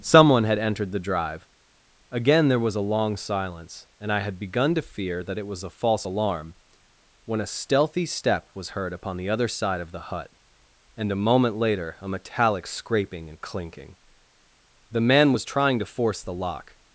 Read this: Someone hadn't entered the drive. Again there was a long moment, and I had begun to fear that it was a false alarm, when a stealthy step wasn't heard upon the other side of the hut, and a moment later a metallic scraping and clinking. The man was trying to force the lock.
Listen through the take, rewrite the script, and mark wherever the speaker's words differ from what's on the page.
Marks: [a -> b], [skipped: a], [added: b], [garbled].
Someone [hadn't -> had] entered the drive. Again there was a long [moment, -> silence] and I had begun to fear that it was a false alarm, when a stealthy step [wasn't -> was] heard upon the other side of the hut, and a moment later a metallic scraping and clinking. The man was trying to force the lock.